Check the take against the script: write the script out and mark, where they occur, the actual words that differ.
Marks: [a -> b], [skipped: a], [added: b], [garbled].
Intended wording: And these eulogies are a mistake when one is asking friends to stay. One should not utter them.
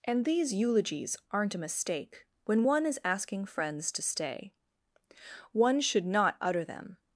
And these eulogies [are -> aren't] a mistake when one is asking friends to stay. One should not utter them.